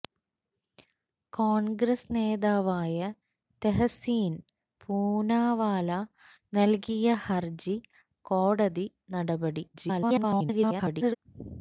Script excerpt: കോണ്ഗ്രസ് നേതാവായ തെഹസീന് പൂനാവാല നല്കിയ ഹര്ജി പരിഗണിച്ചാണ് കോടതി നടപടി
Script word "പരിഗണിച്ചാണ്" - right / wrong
wrong